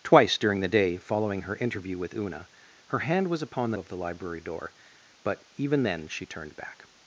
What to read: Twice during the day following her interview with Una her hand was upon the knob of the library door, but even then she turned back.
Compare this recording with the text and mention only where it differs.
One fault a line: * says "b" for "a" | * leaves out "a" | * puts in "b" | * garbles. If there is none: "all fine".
* leaves out "knob"